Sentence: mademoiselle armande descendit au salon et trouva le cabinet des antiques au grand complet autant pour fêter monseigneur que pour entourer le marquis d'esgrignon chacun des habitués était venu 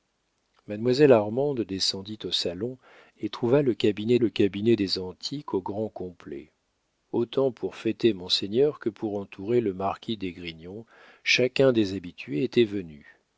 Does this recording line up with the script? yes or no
no